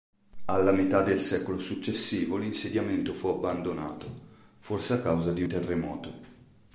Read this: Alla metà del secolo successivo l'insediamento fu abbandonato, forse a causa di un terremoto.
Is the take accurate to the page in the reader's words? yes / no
no